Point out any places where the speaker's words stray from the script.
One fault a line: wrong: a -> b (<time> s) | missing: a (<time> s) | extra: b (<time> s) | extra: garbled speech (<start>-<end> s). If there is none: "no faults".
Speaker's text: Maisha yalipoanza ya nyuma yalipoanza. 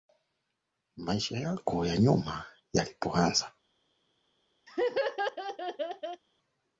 wrong: yalipoanza -> yako (1.4 s)